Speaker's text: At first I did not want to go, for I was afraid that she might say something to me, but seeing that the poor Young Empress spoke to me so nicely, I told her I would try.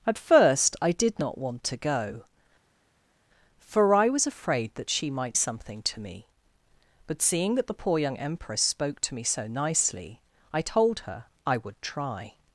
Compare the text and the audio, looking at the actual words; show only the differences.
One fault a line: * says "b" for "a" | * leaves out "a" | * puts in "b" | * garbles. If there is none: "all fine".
* leaves out "say"